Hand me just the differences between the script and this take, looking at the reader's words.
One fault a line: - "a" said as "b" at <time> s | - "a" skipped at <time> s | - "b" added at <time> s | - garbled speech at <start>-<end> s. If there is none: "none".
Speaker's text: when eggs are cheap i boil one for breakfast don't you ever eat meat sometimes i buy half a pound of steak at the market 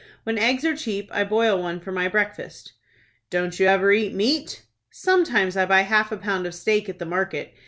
- "my" added at 1.9 s